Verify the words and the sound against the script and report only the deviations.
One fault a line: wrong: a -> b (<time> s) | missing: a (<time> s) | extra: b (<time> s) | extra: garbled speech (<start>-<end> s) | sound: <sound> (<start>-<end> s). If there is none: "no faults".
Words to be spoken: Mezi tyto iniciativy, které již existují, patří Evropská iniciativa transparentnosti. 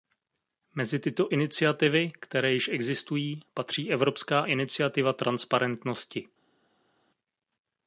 no faults